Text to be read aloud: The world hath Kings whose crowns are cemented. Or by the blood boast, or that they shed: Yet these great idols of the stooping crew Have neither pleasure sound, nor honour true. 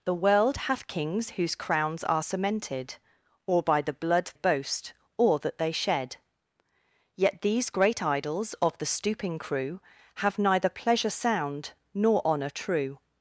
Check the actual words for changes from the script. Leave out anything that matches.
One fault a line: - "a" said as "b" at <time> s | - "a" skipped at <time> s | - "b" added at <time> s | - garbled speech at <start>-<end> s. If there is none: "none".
none